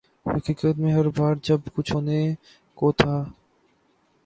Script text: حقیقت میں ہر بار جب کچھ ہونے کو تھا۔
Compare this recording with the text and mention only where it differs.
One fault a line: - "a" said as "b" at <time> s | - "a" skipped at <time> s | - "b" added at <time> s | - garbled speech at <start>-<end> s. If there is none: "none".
none